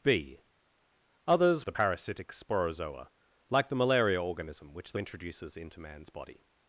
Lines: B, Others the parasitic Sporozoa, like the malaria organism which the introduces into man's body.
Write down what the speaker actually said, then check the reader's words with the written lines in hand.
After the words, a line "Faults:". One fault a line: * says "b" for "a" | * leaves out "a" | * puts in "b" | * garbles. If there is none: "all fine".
B, Others the parasitic Sporozoa, like the malaria organism which the introduces into man's body.
Faults:
all fine